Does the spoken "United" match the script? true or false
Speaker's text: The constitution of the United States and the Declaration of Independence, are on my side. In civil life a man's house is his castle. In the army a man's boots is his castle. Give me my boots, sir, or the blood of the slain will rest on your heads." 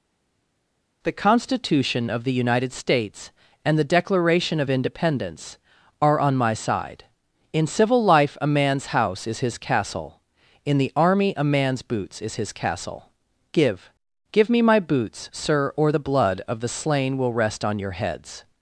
true